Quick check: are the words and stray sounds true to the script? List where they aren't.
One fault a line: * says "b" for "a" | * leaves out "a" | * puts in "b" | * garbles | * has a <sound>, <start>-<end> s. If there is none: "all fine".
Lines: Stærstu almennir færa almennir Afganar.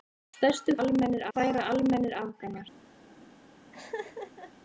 * has a laugh, 3.7-4.5 s